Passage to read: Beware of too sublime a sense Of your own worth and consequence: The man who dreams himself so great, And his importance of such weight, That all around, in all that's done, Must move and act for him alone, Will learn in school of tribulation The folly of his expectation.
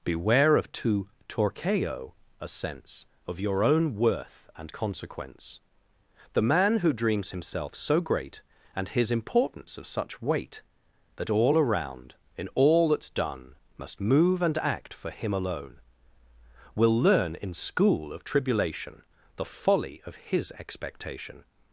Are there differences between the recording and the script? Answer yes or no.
yes